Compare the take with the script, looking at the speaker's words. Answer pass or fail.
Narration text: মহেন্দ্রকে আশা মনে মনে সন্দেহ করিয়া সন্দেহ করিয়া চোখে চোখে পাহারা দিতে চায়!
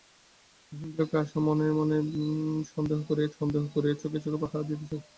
pass